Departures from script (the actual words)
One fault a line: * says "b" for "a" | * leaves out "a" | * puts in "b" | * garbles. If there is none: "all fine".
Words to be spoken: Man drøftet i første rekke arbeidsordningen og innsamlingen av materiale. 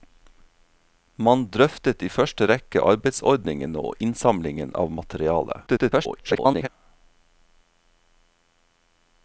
* garbles